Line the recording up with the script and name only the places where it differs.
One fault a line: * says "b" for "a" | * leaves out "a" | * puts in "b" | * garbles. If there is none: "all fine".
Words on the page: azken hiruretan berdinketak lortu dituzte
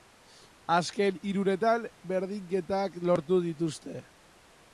all fine